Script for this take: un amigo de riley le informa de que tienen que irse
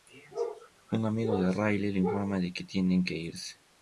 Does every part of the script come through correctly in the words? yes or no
yes